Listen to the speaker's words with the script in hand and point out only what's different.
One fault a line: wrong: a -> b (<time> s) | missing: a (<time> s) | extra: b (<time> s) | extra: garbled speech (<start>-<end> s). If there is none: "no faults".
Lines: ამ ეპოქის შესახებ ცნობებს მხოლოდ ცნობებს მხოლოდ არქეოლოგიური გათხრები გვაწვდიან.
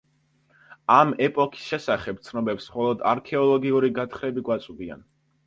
missing: ცნობებს მხოლოდ (3.0 s)